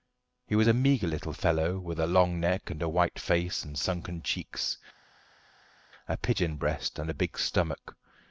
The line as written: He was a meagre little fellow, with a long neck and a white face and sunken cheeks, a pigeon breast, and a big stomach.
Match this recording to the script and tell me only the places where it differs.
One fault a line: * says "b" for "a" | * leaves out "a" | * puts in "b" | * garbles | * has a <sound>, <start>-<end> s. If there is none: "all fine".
all fine